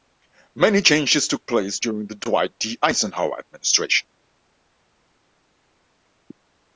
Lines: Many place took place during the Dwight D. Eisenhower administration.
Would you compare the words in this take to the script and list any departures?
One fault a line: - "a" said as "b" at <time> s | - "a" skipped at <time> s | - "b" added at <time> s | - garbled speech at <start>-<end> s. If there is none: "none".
- "place" said as "changes" at 0.8 s